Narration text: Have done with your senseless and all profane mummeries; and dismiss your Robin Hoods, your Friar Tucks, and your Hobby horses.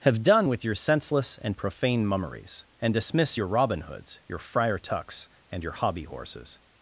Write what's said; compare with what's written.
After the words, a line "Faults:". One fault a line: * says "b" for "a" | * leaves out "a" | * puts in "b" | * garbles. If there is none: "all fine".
Have done with your senseless and profane mummeries; and dismiss your Robin Hoods, your Friar Tucks, and your Hobby horses.
Faults:
* leaves out "all"